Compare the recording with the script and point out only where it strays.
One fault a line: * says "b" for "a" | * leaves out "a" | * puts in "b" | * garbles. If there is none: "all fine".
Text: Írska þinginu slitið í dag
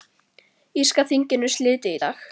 all fine